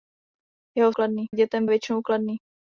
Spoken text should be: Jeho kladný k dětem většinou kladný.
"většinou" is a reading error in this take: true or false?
false